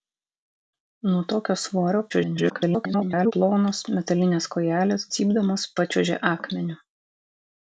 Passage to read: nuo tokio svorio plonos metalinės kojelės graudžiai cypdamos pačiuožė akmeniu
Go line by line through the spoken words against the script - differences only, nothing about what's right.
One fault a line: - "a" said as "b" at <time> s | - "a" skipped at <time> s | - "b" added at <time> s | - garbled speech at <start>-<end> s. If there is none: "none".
- garbled speech at 2.1-3.3 s
- "graudžiai" skipped at 5.1 s